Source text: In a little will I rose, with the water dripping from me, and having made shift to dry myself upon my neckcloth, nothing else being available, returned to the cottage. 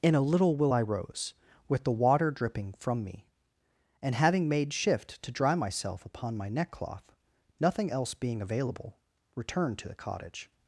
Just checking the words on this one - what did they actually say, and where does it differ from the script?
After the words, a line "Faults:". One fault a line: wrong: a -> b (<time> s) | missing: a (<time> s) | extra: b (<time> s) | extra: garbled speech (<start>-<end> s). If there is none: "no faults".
In a little will I rose, with the water dripping from me, and having made shift to dry myself upon my neckcloth, nothing else being available, returned to the cottage.
Faults:
no faults